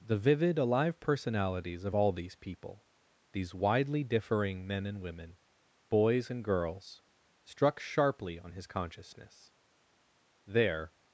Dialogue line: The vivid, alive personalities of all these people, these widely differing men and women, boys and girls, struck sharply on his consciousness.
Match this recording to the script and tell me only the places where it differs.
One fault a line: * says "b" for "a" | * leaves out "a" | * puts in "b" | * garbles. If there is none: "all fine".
* puts in "There"